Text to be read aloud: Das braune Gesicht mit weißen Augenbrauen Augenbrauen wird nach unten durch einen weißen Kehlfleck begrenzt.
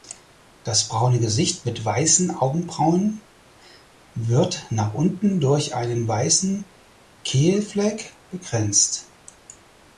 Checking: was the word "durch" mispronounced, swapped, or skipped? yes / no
no